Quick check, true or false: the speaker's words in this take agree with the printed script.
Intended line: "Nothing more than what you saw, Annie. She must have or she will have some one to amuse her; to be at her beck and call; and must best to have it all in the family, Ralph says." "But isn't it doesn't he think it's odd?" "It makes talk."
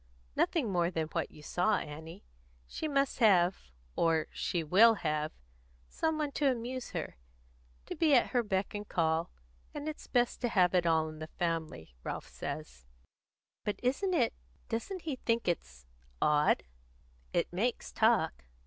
false